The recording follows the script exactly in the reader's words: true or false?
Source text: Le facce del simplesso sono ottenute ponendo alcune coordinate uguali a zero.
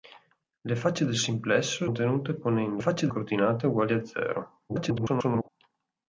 false